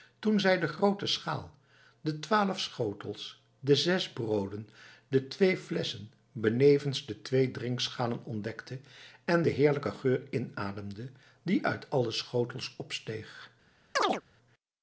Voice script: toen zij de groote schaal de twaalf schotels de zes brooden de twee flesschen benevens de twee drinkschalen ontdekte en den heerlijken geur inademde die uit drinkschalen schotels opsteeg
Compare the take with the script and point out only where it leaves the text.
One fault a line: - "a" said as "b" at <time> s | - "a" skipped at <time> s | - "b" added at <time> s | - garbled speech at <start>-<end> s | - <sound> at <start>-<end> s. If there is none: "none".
- "drinkschalen" said as "alle" at 11.9 s
- chirp at 14.0-14.2 s